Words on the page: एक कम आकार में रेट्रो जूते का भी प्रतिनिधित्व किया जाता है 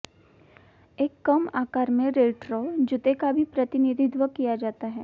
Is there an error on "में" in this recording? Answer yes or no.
no